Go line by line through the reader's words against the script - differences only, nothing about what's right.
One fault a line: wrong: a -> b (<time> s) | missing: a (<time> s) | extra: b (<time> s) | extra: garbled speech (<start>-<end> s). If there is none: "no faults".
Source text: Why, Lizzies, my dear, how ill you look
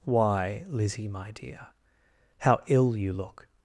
wrong: Lizzies -> Lizzie (0.7 s)